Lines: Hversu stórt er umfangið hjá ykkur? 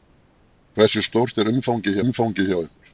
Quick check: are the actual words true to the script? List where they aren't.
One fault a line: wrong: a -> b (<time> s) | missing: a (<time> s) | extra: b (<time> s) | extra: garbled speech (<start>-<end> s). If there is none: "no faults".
extra: umfangið (2.0 s)